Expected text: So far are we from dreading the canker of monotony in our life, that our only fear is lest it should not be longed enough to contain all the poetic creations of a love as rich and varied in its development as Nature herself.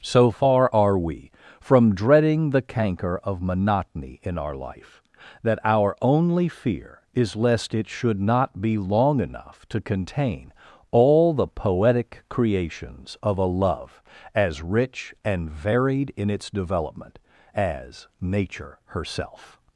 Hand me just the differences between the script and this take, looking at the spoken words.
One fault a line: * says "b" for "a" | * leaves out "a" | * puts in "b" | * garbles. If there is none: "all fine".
* says "long" for "longed"